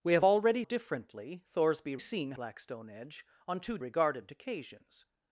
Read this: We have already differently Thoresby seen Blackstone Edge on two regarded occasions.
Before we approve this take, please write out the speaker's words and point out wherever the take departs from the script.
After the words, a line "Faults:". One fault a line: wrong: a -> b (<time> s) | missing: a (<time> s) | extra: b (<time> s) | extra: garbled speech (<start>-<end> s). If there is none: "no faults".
We have already differently Thoresby seen Blackstone Edge on two regarded occasions.
Faults:
no faults